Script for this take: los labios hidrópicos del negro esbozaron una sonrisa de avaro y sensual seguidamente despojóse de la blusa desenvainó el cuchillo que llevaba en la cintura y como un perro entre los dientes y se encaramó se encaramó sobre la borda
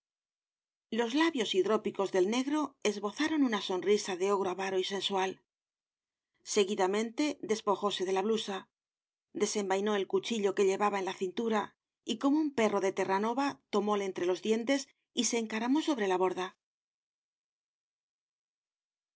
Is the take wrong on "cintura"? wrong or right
right